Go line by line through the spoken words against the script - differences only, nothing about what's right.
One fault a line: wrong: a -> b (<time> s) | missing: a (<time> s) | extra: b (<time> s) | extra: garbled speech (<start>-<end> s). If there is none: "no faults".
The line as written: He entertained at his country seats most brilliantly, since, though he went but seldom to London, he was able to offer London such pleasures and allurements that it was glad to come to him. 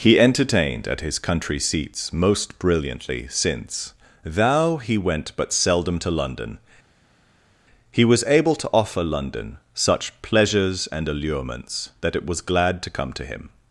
wrong: though -> thou (4.2 s)